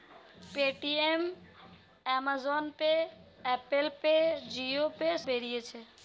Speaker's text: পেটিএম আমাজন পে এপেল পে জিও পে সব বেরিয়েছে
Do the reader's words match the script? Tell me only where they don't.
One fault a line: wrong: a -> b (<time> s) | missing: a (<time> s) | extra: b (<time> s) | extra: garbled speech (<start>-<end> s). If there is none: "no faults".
missing: সব (5.1 s)